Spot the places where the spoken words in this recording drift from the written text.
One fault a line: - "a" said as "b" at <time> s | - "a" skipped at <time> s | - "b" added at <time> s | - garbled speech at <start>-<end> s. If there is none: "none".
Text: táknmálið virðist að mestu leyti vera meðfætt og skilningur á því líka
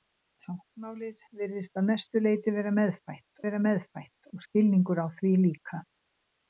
- "vera meðfætt" added at 3.4 s